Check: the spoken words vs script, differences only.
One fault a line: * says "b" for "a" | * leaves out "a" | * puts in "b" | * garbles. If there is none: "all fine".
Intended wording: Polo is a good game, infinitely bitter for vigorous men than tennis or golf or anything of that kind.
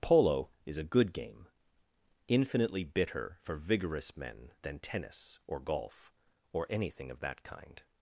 all fine